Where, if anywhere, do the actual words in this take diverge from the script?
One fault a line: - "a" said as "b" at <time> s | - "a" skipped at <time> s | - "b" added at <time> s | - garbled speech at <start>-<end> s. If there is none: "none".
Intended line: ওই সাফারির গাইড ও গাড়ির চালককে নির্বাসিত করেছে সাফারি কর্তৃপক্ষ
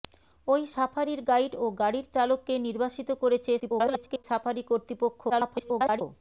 - garbled speech at 3.6-4.2 s
- garbled speech at 5.3-6.0 s